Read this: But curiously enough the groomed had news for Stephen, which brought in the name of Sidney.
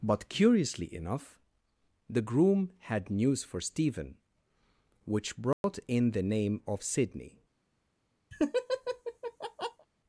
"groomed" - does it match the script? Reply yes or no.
no